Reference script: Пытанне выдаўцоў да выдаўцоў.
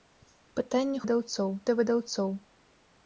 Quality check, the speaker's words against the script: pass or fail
pass